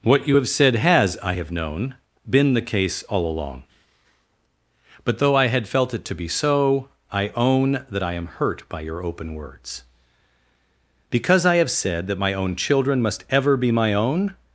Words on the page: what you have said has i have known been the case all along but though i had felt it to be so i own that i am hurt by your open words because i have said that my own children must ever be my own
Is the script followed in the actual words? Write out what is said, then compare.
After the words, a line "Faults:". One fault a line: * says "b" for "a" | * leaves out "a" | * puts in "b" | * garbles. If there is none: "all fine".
what you have said has i have known been the case all along but though i had felt it to be so i own that i am hurt by your open words because i have said that my own children must ever be my own
Faults:
all fine